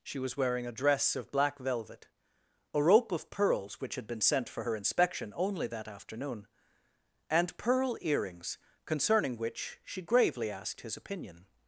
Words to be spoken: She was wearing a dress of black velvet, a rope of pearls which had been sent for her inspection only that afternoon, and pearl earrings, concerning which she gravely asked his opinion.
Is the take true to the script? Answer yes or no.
yes